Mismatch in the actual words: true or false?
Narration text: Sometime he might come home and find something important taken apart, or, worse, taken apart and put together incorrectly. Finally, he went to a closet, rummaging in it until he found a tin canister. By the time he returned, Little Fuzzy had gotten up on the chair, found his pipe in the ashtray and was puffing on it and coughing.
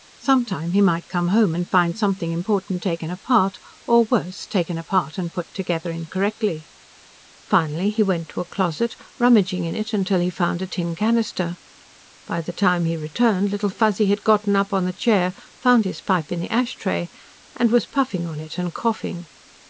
false